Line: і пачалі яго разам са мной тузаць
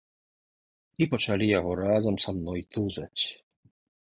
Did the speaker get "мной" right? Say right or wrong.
right